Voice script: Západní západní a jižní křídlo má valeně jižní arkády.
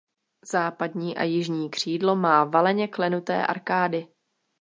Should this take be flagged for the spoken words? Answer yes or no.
yes